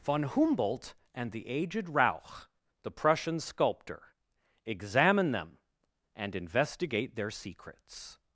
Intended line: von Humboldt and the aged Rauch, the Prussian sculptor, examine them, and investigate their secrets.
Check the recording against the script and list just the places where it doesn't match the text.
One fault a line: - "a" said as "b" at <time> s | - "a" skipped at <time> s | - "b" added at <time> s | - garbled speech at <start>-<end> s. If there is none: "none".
none